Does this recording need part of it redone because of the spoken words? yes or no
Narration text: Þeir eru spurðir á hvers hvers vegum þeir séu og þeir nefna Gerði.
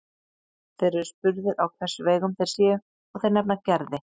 yes